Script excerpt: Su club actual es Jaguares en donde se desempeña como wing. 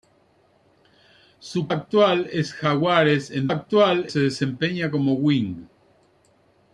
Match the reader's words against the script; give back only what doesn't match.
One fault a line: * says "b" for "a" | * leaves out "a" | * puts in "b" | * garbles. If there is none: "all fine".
* leaves out "club"
* says "actual" for "donde"